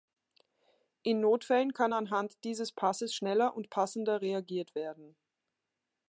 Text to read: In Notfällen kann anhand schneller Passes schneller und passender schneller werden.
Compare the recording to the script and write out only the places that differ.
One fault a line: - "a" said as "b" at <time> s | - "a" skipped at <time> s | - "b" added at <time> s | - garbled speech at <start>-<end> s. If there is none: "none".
- "schneller" said as "dieses" at 2.4 s
- "schneller" said as "reagiert" at 4.2 s